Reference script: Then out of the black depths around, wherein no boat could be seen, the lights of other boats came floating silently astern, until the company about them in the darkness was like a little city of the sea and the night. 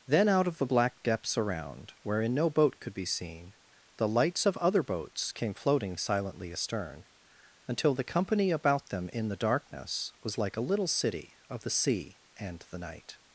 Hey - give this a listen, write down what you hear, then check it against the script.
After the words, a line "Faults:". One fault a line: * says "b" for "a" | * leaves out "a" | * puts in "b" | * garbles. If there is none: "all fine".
Then out of the black depths around, wherein no boat could be seen, the lights of other boats came floating silently astern, until the company about them in the darkness was like a little city of the sea and the night.
Faults:
all fine